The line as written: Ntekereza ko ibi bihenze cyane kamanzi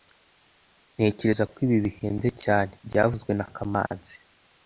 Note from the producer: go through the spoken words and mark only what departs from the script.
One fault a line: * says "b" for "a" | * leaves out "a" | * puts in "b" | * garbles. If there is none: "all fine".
* puts in "byavuzwe na"